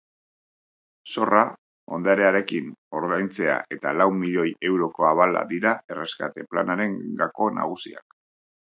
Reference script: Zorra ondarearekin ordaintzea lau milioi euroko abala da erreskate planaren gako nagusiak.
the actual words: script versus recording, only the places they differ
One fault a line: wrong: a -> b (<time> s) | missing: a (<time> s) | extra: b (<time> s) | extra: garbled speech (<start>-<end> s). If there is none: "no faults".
extra: eta (3.8 s)
wrong: da -> dira (5.5 s)